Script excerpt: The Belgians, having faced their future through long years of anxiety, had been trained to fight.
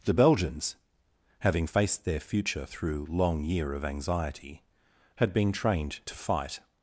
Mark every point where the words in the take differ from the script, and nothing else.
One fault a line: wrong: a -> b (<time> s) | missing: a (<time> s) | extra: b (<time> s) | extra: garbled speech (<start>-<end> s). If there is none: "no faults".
wrong: years -> year (3.4 s)